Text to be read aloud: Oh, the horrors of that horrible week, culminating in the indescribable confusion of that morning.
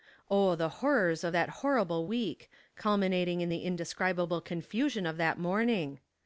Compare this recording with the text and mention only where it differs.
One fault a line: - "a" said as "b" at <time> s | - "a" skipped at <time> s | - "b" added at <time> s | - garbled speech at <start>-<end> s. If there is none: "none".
none